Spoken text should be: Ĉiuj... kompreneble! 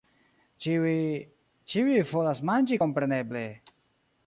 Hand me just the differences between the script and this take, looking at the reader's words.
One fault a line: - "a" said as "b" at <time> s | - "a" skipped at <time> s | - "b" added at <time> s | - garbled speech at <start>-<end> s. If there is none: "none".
- "ĉiuj volas manĝi" added at 1.7 s